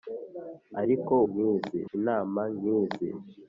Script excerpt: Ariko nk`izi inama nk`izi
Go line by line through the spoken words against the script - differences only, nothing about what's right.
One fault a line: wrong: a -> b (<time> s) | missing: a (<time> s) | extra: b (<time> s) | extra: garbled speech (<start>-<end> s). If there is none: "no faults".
no faults